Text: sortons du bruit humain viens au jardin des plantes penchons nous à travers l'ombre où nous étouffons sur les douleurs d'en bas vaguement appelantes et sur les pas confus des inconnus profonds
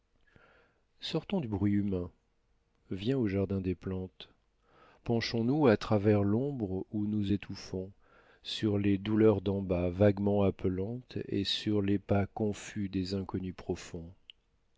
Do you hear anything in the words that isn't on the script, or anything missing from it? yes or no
no